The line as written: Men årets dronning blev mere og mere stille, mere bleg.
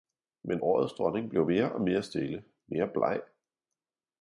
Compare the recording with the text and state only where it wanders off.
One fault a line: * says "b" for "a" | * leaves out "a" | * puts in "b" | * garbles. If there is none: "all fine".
all fine